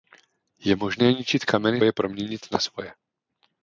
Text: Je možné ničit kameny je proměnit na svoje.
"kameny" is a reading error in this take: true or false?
false